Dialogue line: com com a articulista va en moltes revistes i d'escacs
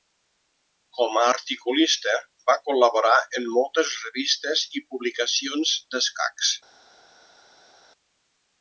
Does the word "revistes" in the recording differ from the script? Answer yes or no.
no